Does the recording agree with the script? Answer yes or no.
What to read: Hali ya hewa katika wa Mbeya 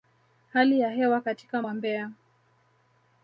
yes